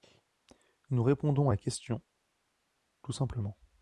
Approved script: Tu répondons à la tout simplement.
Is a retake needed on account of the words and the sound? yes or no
yes